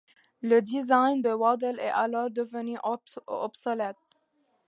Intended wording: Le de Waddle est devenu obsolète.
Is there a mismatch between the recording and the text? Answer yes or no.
yes